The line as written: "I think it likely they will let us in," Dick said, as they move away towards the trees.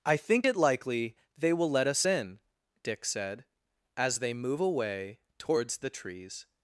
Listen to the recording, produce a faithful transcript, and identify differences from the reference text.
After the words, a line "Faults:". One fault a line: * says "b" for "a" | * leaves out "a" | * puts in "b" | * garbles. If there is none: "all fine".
"I think it likely they will let us in," Dick said, as they move away towards the trees.
Faults:
all fine